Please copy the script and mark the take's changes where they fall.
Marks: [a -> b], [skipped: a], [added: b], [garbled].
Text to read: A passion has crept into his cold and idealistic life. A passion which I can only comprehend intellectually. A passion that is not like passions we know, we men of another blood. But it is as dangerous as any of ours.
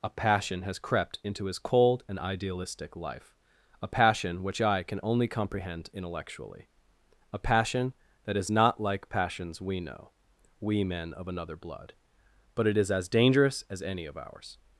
A passion has crept into his cold and idealistic life. A passion which I can only comprehend intellectually. A passion that is not like passions we know, we men of another blood. But it is as dangerous as any of ours.